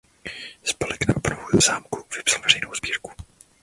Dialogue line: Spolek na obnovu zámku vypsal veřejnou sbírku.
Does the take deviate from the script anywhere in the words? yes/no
no